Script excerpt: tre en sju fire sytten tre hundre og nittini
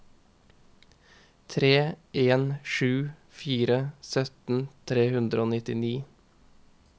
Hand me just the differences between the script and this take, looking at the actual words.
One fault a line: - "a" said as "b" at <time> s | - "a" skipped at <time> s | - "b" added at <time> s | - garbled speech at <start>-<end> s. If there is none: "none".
none